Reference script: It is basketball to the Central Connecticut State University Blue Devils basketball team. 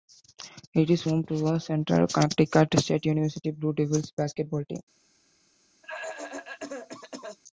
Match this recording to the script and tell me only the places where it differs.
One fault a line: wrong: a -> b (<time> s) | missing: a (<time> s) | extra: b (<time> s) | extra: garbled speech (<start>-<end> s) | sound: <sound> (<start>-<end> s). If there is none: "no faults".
wrong: basketball -> home (1.0 s)
sound: cough (5.8-7.4 s)